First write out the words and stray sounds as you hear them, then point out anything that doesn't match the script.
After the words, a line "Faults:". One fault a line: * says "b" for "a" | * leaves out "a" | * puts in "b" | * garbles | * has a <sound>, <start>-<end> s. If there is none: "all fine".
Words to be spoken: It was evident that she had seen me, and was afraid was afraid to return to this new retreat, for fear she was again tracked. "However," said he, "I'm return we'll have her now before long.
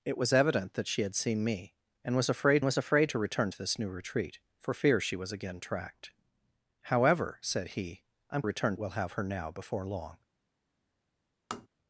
It was evident that she had seen me, and was afraid was afraid to return to this new retreat, for fear she was again tracked. "However," said he, "I'm return we'll have her now before long.
Faults:
* has a tap, 11.5-11.7 s